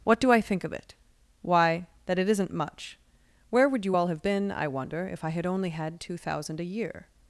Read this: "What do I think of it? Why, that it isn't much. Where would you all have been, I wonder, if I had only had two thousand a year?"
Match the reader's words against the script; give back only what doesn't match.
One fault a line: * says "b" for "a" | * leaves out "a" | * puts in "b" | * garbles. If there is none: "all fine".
all fine